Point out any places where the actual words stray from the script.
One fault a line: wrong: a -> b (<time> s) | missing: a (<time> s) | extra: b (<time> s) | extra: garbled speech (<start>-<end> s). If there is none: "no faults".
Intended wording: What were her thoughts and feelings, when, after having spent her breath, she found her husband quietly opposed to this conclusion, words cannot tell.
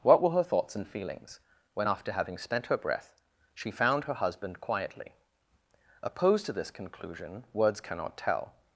no faults